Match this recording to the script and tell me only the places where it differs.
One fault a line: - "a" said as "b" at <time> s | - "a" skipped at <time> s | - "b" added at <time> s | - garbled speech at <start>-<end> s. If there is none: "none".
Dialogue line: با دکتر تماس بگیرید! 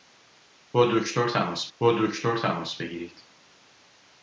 - "با دکتر تماس" added at 1.8 s